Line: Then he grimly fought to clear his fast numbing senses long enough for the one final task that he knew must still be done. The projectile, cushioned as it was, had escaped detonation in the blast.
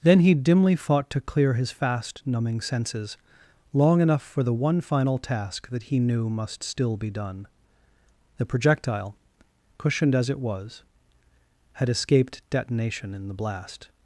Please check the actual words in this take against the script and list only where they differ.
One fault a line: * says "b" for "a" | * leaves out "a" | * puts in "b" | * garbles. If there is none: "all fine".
* says "dimly" for "grimly"